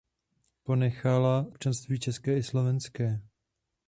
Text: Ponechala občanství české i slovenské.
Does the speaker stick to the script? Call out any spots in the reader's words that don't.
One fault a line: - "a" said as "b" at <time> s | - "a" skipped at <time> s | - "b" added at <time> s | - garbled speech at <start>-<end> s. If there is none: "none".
none